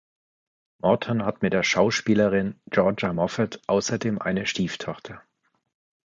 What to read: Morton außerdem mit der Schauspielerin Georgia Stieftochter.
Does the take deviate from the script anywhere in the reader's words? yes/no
yes